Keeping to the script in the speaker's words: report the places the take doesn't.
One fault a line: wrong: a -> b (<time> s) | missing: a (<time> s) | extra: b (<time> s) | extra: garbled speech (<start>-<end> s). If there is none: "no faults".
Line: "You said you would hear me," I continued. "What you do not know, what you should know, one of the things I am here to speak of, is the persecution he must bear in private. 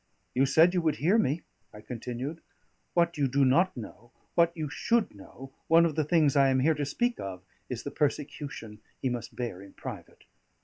no faults